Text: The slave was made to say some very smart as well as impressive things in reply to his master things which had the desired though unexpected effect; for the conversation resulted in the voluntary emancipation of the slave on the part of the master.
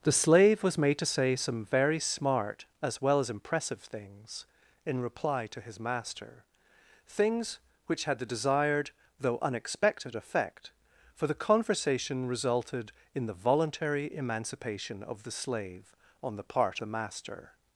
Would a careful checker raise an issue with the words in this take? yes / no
yes